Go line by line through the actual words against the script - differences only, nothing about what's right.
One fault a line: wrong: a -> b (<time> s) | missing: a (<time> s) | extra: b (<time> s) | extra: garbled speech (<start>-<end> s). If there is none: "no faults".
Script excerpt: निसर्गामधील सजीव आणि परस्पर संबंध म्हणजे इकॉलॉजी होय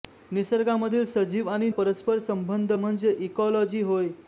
no faults